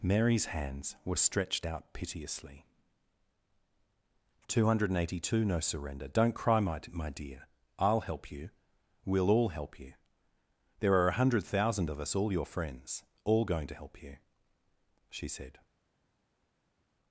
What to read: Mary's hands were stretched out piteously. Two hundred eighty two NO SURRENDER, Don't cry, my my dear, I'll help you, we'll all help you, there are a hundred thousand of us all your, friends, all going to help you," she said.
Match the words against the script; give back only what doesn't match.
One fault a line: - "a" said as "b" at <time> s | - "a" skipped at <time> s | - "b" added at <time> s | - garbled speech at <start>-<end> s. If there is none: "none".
none